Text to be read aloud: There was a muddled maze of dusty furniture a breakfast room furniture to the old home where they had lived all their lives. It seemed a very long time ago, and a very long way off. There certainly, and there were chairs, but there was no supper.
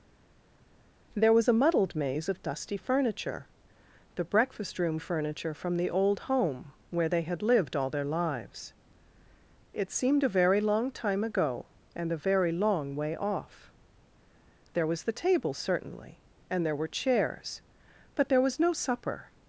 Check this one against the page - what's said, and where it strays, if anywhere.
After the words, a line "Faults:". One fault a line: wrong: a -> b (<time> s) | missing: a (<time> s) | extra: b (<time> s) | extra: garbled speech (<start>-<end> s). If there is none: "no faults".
There was a muddled maze of dusty furniture the breakfast room furniture from the old home where they had lived all their lives. It seemed a very long time ago, and a very long way off. There was the table certainly, and there were chairs, but there was no supper.
Faults:
wrong: a -> the (4.1 s)
wrong: to -> from (5.5 s)
extra: was the table (14.9 s)